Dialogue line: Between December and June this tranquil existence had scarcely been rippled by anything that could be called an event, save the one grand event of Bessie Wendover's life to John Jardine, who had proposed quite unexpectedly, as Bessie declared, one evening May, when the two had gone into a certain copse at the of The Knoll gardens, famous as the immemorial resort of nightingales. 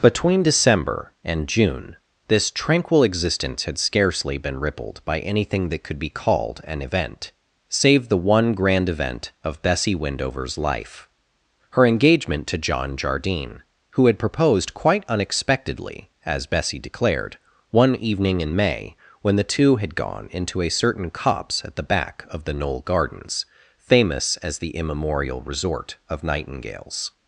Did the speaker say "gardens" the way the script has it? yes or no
yes